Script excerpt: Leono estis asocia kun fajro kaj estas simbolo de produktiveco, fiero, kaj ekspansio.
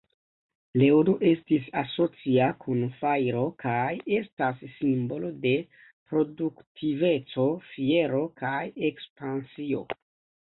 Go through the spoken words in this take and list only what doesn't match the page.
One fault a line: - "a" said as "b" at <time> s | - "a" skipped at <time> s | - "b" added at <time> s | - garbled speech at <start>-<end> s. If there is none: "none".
none